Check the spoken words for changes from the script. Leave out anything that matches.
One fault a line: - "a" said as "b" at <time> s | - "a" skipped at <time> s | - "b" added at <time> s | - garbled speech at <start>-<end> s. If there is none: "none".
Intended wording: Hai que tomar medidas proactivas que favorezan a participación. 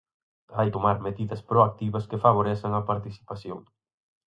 - "que" skipped at 0.7 s